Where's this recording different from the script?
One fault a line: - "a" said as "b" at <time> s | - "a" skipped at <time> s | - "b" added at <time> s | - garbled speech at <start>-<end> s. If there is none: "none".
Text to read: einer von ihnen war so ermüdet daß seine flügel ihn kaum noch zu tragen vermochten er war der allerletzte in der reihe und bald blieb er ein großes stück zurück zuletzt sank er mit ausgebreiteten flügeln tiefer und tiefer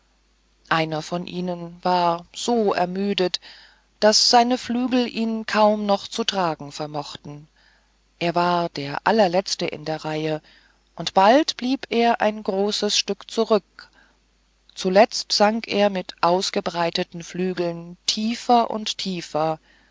none